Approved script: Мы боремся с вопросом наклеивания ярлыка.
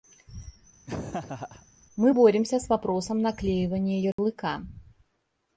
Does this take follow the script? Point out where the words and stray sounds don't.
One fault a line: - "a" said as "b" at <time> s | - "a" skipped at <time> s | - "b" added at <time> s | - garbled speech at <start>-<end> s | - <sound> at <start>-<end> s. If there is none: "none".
- laugh at 0.9-1.7 s
- dropout at 4.1-4.2 s